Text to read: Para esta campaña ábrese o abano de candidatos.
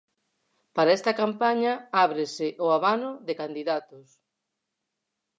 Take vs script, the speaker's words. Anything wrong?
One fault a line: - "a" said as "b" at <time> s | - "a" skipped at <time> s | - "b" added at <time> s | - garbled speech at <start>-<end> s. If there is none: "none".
none